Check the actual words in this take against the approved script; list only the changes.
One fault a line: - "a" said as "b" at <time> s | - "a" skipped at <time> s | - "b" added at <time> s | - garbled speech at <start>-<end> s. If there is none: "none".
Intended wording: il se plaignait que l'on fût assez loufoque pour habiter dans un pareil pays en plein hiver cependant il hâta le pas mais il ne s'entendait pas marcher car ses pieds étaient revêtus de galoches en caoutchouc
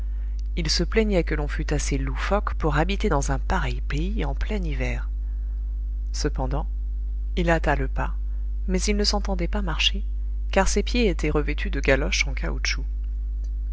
none